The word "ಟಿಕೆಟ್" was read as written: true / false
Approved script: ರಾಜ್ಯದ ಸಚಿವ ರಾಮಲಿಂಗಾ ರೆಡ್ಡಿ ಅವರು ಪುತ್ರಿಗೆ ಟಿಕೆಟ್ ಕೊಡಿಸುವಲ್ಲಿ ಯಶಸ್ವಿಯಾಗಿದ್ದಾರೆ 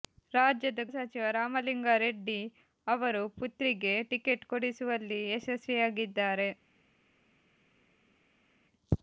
true